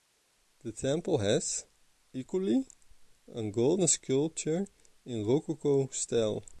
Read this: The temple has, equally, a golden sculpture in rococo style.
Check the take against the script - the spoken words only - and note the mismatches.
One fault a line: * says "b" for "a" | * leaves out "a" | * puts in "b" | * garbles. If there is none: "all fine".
all fine